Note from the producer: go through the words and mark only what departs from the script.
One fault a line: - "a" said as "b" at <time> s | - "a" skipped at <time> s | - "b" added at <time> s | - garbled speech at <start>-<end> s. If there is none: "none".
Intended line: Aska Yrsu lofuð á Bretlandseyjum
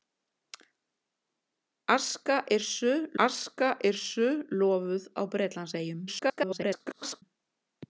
- "aska Yrsu" added at 3.3 s
- garbled speech at 6.1-7.2 s